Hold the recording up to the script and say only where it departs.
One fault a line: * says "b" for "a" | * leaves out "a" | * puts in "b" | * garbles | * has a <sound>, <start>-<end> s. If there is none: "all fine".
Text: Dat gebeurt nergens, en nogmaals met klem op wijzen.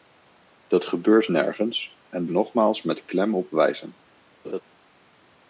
* has a laugh, 4.4-4.6 s